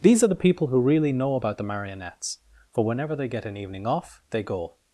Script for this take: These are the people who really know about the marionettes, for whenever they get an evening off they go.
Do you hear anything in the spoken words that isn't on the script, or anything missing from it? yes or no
no